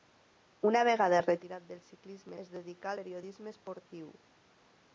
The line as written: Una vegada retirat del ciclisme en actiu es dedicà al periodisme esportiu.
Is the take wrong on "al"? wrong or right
wrong